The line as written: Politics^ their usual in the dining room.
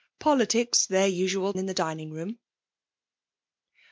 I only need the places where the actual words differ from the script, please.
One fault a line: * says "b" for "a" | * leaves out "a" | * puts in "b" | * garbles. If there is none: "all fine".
all fine